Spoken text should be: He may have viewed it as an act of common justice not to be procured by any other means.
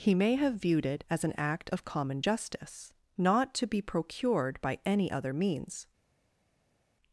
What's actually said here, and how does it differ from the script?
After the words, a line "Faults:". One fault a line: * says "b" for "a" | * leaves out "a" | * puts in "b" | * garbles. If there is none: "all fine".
He may have viewed it as an act of common justice not to be procured by any other means.
Faults:
all fine